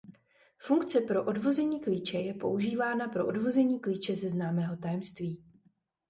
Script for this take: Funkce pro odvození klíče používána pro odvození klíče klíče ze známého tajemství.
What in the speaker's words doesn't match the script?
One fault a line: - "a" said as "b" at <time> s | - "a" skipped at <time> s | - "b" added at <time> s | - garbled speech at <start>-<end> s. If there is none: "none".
- "je" added at 2.2 s
- "klíče" skipped at 4.1 s